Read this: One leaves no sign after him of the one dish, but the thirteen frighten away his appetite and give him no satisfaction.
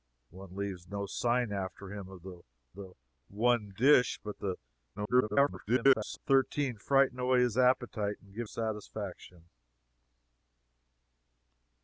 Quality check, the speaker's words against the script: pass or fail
fail